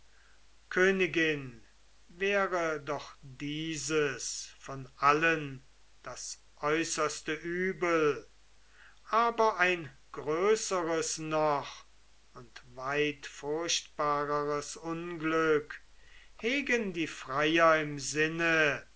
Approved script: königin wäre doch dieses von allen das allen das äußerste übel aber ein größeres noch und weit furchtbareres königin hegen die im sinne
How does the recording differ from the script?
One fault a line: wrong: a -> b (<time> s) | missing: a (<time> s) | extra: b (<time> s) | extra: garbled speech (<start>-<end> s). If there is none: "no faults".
missing: allen das (6.4 s)
wrong: königin -> unglück (14.8 s)
extra: freier (17.1 s)